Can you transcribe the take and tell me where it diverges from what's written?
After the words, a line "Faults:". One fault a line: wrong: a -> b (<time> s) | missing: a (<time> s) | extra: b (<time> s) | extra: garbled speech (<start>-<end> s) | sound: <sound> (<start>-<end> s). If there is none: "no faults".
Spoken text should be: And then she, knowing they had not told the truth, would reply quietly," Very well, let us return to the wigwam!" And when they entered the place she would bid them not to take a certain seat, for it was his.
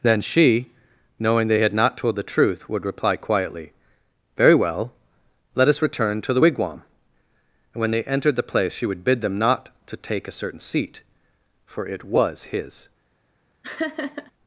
then she, knowing they had not told the truth, would reply quietly," Very well, let us return to the wigwam!" And when they entered the place she would bid them not to take a certain seat, for it was his.
Faults:
missing: And (0.0 s)
sound: laugh (13.6-14.3 s)